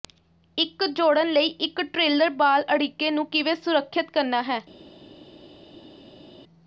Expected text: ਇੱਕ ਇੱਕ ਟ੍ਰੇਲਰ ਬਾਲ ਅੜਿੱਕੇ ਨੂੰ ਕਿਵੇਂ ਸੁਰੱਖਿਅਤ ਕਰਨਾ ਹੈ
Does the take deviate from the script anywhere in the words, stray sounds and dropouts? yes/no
yes